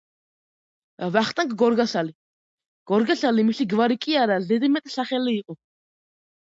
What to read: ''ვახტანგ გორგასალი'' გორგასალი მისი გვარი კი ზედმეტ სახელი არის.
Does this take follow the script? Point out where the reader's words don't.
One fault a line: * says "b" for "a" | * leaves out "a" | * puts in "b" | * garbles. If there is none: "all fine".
* puts in "არა"
* says "იყო" for "არის"